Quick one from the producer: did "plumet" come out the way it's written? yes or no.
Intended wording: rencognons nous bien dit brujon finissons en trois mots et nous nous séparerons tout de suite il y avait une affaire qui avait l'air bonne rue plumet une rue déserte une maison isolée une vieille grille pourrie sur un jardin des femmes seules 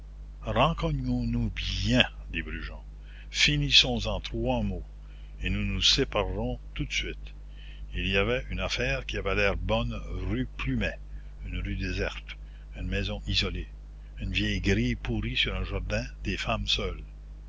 yes